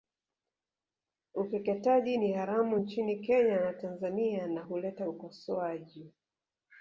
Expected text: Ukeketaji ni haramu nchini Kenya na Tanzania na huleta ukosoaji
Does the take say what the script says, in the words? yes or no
yes